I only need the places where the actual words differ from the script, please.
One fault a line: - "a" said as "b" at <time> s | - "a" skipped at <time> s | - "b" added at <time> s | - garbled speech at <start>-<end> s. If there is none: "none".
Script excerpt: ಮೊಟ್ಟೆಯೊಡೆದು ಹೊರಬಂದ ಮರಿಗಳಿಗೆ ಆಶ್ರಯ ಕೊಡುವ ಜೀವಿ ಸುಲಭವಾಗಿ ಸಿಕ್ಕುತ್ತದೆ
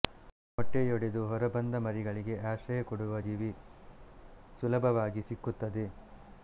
none